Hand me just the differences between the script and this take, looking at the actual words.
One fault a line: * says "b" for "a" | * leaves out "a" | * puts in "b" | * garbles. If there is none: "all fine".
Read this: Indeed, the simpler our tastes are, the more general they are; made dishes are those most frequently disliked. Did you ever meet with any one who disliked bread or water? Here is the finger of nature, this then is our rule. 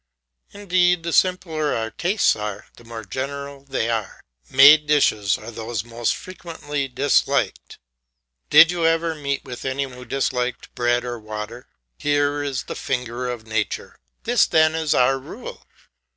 * leaves out "one"